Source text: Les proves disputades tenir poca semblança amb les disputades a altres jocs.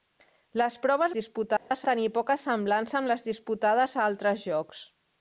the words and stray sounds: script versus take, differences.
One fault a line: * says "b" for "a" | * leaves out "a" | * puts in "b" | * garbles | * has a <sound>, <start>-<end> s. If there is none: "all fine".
* has a dropout, 1.6-1.7 s